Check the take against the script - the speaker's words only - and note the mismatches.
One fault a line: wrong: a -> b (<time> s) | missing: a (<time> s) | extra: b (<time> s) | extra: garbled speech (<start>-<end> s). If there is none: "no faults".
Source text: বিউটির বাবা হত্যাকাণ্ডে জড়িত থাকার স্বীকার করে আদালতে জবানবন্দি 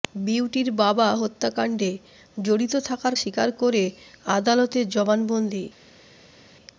no faults